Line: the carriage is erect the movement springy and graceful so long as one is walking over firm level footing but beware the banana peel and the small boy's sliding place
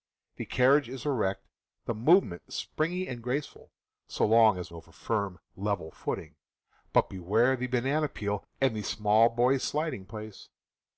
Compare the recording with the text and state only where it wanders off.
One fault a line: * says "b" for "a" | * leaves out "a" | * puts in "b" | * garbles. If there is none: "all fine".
* leaves out "one is walking"